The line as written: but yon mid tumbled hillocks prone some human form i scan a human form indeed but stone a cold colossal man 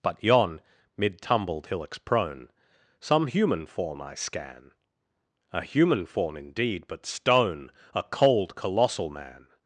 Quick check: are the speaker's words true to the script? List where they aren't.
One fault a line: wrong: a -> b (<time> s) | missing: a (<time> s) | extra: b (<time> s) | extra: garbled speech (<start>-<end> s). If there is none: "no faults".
no faults